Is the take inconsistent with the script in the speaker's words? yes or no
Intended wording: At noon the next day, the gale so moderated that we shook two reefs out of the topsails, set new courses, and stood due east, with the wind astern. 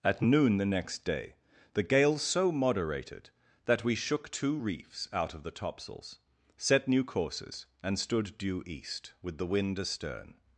no